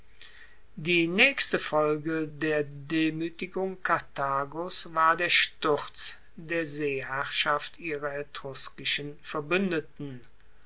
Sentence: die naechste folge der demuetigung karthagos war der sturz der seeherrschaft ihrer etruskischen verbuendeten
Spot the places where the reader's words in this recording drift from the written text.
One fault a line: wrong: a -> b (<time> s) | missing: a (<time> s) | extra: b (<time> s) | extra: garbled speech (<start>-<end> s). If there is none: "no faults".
no faults